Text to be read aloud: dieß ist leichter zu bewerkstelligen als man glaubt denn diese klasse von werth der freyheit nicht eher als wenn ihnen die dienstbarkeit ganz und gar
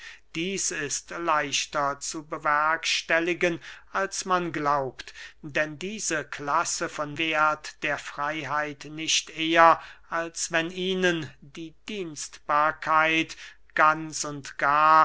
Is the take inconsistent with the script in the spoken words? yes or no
no